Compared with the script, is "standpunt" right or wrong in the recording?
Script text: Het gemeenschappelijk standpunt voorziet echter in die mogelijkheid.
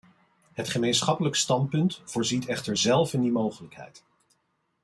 right